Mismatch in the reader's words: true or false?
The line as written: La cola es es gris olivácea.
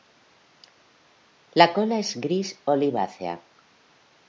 true